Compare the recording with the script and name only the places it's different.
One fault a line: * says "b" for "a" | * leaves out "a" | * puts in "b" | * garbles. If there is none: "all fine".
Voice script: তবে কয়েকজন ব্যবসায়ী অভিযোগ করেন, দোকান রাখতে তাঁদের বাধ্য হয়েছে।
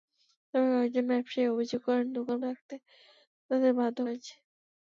all fine